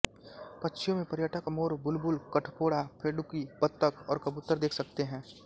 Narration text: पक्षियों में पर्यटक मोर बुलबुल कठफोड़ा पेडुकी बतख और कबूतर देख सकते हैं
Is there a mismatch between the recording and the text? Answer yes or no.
no